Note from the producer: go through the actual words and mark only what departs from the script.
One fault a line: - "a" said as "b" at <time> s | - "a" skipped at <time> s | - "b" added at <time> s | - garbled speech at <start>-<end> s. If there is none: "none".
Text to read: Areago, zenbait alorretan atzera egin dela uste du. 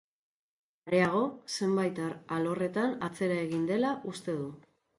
none